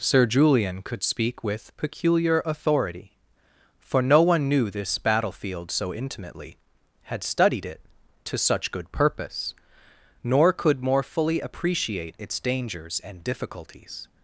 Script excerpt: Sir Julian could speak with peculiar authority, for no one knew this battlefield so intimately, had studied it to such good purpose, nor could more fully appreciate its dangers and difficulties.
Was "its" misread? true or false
false